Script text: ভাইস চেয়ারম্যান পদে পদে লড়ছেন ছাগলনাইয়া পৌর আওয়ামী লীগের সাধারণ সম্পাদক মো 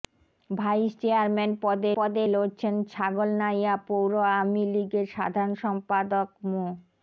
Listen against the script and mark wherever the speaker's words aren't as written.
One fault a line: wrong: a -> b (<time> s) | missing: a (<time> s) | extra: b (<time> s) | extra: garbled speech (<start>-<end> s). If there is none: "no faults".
no faults